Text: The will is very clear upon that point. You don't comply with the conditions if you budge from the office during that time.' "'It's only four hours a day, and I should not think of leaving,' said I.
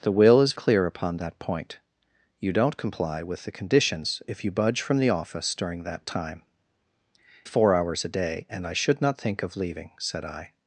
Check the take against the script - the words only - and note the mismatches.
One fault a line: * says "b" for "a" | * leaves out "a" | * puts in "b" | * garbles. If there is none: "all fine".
* leaves out "very"
* leaves out "It's only"